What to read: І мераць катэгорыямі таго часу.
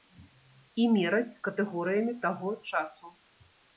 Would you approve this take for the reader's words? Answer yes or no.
yes